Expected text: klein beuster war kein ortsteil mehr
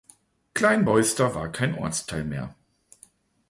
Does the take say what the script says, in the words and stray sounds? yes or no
yes